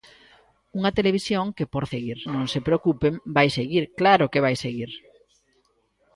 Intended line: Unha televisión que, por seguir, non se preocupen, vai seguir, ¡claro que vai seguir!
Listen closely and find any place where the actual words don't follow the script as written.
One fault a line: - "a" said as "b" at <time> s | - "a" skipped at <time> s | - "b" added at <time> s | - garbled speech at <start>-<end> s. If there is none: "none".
none